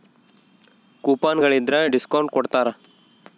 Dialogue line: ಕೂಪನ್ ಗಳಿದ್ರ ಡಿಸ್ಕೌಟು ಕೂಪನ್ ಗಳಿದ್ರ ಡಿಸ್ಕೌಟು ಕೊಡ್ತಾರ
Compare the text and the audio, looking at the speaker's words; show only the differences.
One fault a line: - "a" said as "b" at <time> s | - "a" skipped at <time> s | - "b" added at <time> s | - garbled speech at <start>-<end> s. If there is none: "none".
- "ಕೂಪನ್ ಗಳಿದ್ರ ಡಿಸ್ಕೌಟು" skipped at 2.3 s